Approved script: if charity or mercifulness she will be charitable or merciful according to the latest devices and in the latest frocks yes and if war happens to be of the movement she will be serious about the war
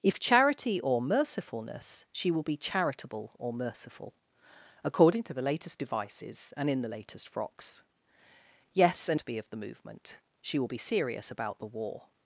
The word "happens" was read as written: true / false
false